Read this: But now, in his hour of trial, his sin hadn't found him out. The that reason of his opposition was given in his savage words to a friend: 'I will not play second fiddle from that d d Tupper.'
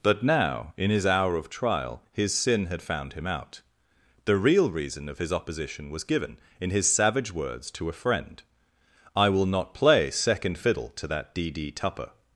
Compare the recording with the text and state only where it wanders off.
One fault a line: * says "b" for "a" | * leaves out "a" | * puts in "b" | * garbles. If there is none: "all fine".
* says "had" for "hadn't"
* says "real" for "that"
* says "to" for "from"